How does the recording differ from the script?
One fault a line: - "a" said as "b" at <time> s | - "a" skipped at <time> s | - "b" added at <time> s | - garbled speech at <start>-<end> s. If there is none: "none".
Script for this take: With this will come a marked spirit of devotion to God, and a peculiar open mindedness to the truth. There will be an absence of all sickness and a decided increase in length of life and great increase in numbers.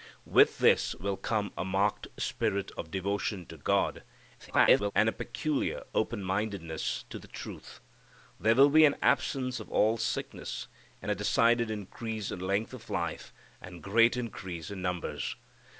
- garbled speech at 4.4-4.9 s